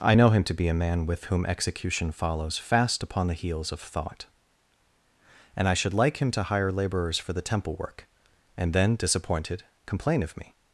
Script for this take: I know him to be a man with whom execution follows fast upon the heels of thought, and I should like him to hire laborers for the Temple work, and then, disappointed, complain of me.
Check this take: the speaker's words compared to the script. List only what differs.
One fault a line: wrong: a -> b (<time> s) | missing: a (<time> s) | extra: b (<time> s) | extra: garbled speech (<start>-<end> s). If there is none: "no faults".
no faults